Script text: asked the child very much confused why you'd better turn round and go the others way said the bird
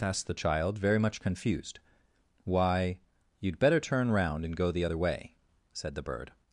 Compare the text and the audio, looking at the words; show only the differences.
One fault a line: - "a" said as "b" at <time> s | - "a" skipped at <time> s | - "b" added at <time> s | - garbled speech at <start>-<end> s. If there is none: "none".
- "others" said as "other" at 4.8 s